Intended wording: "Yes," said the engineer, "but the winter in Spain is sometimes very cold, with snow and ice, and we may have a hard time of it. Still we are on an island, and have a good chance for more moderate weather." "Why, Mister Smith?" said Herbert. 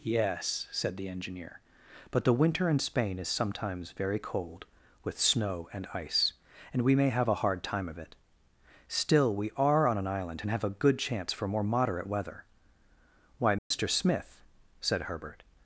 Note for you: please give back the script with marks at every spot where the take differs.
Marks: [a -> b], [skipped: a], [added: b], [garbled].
"Yes," said the engineer, "but the winter in Spain is sometimes very cold, with snow and ice, and we may have a hard time of it. Still we are on an island, and have a good chance for more moderate weather." "Why, Mister Smith?" said Herbert.